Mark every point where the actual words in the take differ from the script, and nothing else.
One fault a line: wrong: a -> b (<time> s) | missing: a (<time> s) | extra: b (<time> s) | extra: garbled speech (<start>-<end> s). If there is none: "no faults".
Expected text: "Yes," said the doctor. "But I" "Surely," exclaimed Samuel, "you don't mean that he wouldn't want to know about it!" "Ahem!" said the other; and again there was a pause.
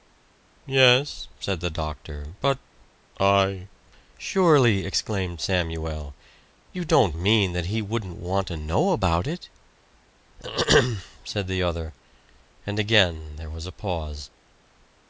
no faults